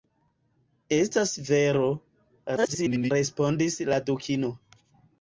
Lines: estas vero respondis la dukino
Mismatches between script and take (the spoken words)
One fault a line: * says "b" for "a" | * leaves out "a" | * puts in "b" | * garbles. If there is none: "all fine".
* garbles